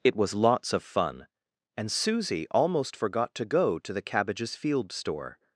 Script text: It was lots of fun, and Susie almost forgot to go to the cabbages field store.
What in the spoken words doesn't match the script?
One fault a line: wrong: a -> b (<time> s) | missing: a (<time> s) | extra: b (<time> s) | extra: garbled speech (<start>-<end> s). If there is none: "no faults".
no faults